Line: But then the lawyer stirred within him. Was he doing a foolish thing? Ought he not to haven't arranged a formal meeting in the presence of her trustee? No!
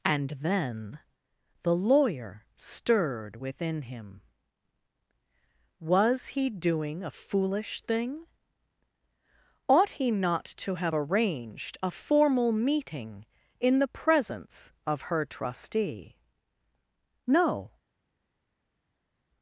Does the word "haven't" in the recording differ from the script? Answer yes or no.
yes